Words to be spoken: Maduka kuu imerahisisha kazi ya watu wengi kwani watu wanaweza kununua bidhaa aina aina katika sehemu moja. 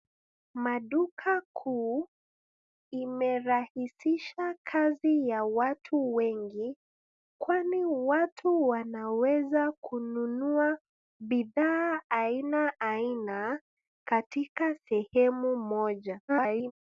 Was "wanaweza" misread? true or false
false